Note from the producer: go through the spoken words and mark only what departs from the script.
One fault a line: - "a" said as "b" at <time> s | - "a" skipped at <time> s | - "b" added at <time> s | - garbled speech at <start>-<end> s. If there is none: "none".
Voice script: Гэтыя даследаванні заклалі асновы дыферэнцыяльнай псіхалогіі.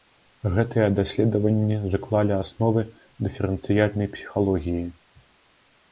none